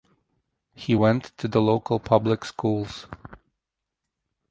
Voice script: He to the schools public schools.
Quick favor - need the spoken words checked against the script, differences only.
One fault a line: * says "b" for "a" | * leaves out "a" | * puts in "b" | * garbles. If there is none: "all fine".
* puts in "went"
* says "local" for "schools"